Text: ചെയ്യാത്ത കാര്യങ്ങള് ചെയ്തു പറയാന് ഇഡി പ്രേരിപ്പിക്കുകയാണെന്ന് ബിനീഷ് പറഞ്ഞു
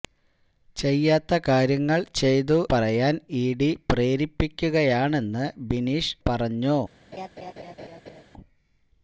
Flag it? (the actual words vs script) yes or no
no